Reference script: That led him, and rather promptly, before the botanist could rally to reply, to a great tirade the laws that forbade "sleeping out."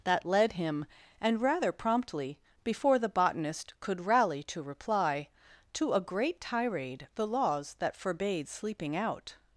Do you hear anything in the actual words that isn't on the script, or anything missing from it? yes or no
no